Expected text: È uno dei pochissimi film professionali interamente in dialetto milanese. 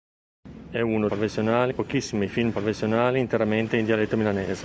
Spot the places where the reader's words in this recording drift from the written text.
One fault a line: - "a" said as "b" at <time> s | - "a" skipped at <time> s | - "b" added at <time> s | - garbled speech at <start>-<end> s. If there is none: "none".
- "dei" said as "professionali" at 1.1 s